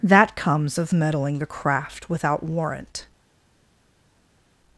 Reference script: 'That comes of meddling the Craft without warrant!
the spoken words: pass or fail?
pass